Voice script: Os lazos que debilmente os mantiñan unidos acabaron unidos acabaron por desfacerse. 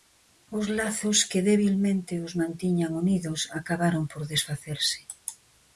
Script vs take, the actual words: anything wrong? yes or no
yes